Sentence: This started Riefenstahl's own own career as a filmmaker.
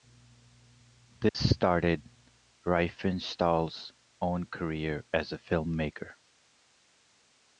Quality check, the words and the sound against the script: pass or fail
fail